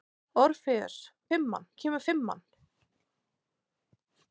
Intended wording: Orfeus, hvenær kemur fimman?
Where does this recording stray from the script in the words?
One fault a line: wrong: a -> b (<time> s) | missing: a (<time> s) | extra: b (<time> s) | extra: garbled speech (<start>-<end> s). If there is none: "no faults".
wrong: hvenær -> fimman (1.3 s)